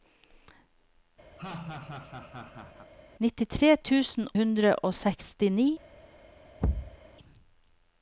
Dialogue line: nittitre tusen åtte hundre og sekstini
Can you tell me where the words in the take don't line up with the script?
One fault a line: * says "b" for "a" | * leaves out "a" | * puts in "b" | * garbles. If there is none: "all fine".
* leaves out "åtte"